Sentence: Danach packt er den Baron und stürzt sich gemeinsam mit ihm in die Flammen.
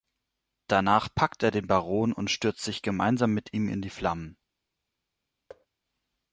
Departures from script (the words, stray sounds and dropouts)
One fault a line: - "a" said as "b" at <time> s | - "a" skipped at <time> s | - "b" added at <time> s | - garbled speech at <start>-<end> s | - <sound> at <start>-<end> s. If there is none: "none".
- thud at 5.5-5.7 s